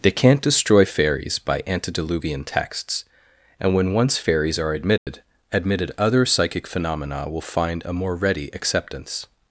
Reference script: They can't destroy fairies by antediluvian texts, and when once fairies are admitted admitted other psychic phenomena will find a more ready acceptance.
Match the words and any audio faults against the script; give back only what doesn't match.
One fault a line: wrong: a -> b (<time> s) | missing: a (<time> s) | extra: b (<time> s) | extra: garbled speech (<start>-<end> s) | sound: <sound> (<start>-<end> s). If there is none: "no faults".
sound: dropout (5.0-5.1 s)